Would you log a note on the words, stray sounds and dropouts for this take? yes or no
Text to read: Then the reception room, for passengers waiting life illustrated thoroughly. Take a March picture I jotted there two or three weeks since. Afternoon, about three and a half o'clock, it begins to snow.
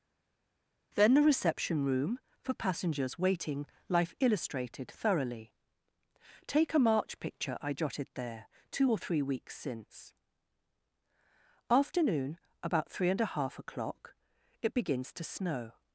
no